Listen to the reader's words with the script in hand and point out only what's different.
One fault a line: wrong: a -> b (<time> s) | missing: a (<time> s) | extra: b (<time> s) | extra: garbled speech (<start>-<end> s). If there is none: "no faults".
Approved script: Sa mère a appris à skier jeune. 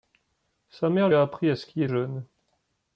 no faults